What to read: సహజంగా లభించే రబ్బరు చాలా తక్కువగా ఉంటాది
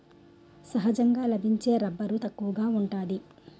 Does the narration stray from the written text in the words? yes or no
yes